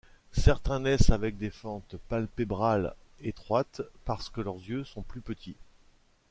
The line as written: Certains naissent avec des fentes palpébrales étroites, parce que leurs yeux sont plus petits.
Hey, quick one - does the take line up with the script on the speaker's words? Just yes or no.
yes